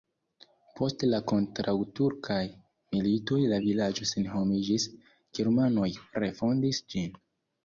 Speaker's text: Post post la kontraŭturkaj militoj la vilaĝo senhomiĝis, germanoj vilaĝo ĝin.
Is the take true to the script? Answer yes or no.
no